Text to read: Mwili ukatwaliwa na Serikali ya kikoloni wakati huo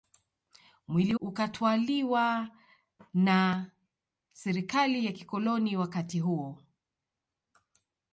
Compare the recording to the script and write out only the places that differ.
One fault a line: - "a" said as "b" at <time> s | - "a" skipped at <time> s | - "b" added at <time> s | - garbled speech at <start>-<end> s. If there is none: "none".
none